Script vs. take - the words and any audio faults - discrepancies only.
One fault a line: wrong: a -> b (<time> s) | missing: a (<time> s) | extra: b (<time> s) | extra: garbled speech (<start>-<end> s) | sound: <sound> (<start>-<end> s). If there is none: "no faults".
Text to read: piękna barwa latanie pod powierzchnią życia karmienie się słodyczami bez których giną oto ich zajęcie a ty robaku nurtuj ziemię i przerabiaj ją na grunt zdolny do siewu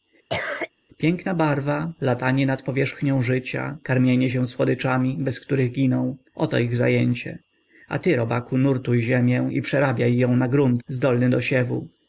sound: cough (0.3-0.7 s)
wrong: pod -> nad (2.4 s)